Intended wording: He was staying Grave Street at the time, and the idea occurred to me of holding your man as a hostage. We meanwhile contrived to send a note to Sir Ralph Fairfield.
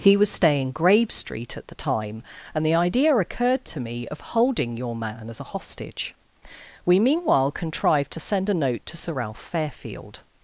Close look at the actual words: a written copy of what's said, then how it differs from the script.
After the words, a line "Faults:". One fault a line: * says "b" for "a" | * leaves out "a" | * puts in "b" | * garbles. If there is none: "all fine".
He was staying Grave Street at the time, and the idea occurred to me of holding your man as a hostage. We meanwhile contrived to send a note to Sir Ralph Fairfield.
Faults:
all fine